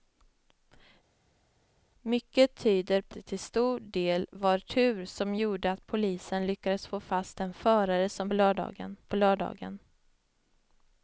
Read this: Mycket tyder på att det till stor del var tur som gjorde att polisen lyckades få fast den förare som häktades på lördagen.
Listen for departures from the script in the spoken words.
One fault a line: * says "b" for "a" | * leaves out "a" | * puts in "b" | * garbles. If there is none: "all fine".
* leaves out "att"
* says "lördagen" for "häktades"